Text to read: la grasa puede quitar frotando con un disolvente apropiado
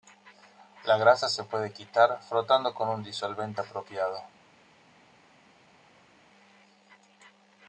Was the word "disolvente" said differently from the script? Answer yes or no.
no